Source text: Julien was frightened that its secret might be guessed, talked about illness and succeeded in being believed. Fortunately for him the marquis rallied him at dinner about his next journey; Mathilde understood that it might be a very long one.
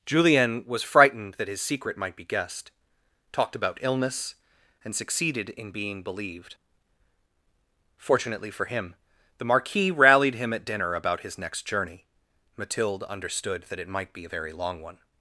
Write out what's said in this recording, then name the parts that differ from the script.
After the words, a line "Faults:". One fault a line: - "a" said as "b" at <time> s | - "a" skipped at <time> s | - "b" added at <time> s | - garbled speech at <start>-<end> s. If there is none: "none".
Julien was frightened that his secret might be guessed, talked about illness and succeeded in being believed. Fortunately for him the marquis rallied him at dinner about his next journey; Mathilde understood that it might be a very long one.
Faults:
- "its" said as "his" at 1.5 s